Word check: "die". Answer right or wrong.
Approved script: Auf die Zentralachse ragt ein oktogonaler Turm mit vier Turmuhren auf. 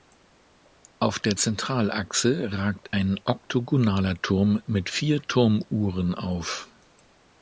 wrong